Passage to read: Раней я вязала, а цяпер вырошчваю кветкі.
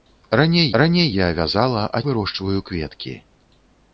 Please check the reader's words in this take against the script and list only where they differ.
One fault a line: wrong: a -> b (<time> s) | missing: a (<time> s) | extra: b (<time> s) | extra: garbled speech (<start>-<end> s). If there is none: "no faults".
extra: раней (0.8 s)
missing: цяпер (2.0 s)